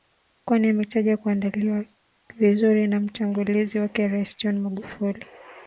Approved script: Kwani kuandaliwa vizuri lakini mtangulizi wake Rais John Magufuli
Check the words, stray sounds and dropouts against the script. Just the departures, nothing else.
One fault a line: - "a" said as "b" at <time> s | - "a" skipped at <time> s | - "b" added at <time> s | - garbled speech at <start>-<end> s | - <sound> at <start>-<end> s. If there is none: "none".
- "ametaja" added at 0.7 s
- "lakini" said as "na" at 2.9 s